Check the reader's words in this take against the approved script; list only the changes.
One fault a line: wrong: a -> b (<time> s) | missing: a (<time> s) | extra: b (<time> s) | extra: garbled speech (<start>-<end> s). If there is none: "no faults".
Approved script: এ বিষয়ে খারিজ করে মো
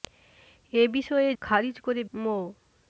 no faults